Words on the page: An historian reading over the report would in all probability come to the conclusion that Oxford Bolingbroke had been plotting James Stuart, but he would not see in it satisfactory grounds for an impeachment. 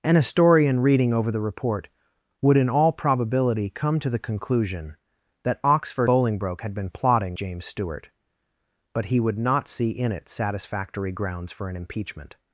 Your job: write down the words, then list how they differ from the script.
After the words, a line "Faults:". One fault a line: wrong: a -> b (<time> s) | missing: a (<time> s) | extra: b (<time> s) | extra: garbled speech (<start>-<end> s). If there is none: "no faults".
An historian reading over the report would in all probability come to the conclusion that Oxford Bolingbroke had been plotting James Stuart, but he would not see in it satisfactory grounds for an impeachment.
Faults:
no faults